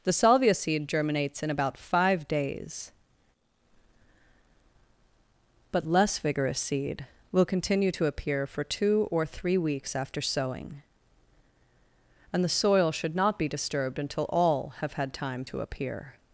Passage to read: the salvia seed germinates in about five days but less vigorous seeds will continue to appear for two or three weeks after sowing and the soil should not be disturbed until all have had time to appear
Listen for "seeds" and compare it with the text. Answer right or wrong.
wrong